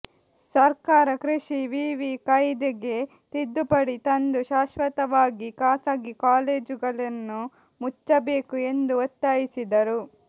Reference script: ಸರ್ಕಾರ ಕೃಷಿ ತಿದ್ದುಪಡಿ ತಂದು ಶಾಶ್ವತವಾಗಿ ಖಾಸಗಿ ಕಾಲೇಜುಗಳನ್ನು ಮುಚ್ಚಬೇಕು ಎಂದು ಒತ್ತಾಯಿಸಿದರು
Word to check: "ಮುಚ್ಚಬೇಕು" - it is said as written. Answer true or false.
true